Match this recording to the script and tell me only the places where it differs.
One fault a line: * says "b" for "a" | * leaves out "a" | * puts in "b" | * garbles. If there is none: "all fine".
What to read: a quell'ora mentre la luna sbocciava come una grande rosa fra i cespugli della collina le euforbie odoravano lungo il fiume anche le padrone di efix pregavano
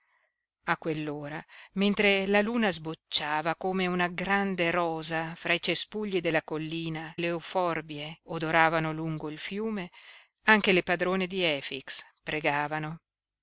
all fine